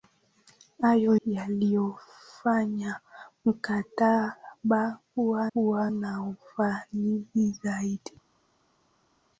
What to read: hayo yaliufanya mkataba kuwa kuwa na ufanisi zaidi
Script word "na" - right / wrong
right